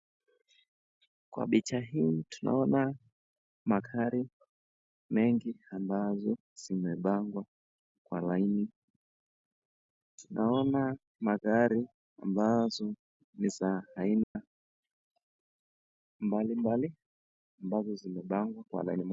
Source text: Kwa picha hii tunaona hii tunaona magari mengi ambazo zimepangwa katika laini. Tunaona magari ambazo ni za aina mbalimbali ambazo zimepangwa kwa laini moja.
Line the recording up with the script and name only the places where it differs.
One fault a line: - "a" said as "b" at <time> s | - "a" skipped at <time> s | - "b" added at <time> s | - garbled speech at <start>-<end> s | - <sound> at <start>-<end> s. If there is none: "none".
- "hii tunaona" skipped at 3.0 s
- "katika" said as "kwa" at 8.0 s
- dropout at 14.2-14.4 s